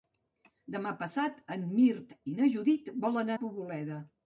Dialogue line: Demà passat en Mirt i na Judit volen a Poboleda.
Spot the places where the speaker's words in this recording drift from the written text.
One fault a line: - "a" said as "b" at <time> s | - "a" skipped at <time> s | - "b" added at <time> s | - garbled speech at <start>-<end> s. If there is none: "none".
none